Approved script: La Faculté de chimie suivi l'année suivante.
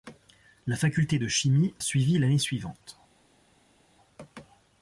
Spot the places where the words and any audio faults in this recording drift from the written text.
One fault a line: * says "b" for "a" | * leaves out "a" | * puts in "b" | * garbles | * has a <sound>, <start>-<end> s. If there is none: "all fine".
all fine